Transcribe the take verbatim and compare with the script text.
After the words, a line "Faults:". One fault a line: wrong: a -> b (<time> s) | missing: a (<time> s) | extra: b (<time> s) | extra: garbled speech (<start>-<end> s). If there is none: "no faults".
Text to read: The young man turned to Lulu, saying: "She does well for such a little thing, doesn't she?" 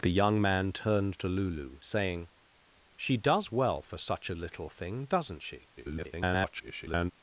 The young man turned to Lulu, saying: "She does well for such a little thing, doesn't she?" [garbled]
Faults:
extra: garbled speech (5.8-7.1 s)